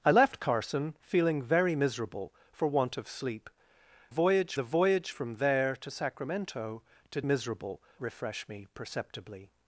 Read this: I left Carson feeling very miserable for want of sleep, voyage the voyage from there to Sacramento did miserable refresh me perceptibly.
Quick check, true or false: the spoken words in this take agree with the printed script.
true